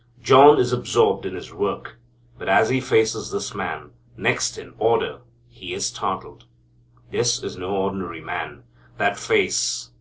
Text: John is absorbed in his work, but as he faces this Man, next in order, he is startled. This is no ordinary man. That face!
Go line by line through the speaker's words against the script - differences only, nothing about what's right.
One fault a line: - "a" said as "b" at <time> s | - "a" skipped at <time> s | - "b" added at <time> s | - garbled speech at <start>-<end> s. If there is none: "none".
none